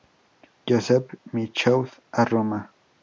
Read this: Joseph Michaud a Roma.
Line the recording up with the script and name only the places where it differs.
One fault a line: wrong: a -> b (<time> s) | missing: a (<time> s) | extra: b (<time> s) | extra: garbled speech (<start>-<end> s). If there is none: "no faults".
no faults